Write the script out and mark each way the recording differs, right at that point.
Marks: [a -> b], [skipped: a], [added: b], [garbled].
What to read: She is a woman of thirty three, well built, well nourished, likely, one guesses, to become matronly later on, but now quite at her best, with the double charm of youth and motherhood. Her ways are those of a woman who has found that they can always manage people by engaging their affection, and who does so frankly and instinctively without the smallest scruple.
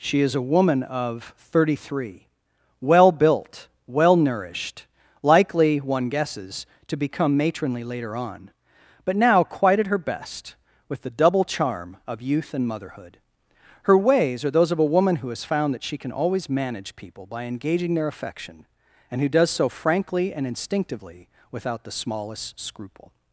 She is a woman of thirty three, well built, well nourished, likely, one guesses, to become matronly later on, but now quite at her best, with the double charm of youth and motherhood. Her ways are those of a woman who has found that [they -> she] can always manage people by engaging their affection, and who does so frankly and instinctively without the smallest scruple.